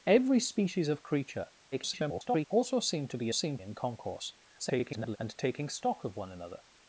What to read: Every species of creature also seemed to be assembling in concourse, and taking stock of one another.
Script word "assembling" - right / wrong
wrong